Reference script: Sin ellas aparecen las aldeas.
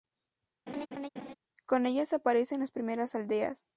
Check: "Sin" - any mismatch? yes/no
yes